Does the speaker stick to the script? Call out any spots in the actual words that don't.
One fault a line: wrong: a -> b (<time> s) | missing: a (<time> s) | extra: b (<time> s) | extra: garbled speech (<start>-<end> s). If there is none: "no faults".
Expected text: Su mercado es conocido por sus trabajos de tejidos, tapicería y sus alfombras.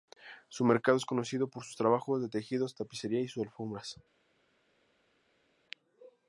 no faults